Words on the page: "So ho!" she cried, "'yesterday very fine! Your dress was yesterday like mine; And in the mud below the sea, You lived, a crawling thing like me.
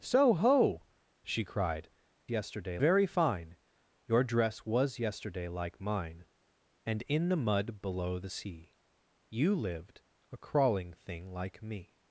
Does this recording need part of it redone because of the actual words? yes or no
no